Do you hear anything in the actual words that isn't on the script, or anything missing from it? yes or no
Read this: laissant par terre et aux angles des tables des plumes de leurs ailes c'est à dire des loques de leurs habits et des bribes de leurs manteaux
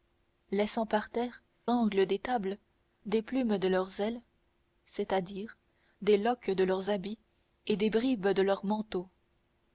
yes